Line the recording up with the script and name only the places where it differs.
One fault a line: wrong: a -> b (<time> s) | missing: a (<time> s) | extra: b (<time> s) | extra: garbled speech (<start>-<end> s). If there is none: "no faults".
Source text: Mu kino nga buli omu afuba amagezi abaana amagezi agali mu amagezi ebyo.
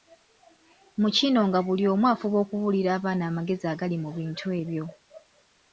wrong: amagezi -> okubuulira (2.4 s)
wrong: amagezi -> bintu (4.2 s)